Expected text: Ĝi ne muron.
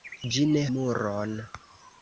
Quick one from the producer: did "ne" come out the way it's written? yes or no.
yes